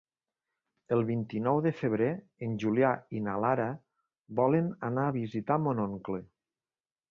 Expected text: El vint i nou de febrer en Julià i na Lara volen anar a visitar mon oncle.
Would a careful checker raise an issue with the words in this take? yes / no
no